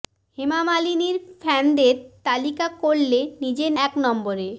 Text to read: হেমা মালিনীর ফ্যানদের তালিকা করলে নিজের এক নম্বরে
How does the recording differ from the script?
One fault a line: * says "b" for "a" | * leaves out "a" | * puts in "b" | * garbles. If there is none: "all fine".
all fine